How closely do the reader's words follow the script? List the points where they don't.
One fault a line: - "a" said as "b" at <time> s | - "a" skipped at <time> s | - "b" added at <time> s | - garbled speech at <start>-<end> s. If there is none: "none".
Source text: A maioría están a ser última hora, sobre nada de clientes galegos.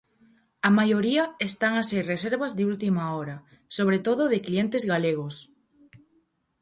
- "reservas de" added at 2.1 s
- "nada" said as "todo" at 4.0 s